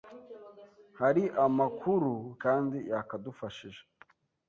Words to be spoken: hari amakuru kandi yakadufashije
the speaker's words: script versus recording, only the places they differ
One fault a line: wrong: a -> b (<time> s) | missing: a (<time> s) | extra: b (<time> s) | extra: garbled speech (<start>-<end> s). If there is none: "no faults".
no faults